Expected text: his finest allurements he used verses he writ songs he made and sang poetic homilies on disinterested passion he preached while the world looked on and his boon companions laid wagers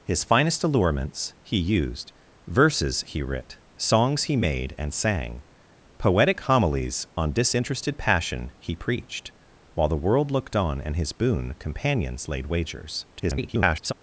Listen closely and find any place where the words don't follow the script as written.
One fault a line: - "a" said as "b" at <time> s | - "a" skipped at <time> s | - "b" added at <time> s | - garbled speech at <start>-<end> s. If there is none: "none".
- garbled speech at 13.1-13.9 s